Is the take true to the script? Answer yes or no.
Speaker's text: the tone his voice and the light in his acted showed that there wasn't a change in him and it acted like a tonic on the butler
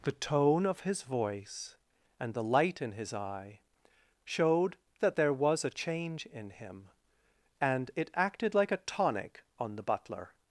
no